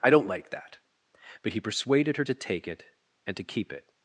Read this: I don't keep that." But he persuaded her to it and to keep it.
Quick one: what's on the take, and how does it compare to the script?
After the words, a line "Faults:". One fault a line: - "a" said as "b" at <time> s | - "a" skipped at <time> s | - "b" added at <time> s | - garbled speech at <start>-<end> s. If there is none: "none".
I don't like that." But he persuaded her to take it and to keep it.
Faults:
- "keep" said as "like" at 0.3 s
- "take" added at 2.3 s